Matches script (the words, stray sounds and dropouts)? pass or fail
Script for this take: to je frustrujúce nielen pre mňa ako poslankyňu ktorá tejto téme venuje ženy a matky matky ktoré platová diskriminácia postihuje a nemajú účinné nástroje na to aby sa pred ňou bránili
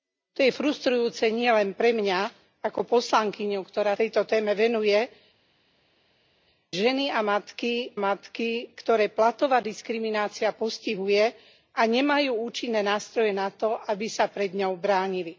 pass